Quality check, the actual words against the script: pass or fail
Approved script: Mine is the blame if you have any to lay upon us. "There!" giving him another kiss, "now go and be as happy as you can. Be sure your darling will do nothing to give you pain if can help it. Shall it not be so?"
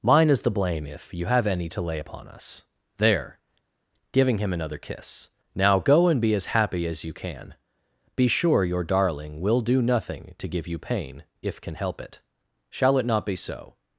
pass